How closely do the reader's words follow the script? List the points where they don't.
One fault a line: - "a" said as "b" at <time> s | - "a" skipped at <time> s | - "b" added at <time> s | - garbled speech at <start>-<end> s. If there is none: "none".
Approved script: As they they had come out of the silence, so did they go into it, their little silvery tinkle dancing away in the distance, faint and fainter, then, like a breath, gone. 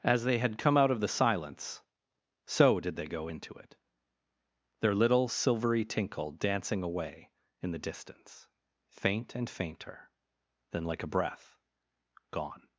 - "they" skipped at 0.4 s